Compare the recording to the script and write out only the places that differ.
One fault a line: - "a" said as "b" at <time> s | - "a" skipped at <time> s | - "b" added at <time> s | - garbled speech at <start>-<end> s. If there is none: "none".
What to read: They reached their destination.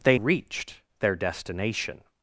none